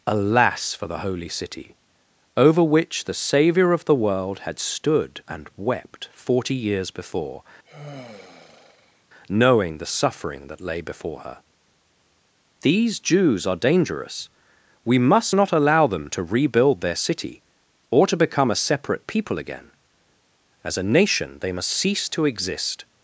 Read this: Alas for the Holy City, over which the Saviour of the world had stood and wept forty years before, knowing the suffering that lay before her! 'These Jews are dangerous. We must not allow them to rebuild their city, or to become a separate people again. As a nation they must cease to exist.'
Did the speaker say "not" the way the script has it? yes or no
yes